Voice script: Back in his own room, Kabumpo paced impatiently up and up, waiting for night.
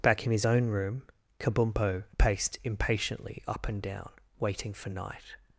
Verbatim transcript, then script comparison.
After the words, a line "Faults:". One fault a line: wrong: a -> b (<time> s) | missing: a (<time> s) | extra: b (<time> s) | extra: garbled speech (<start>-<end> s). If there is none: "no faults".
Back in his own room, Kabumpo paced impatiently up and down, waiting for night.
Faults:
wrong: up -> down (3.8 s)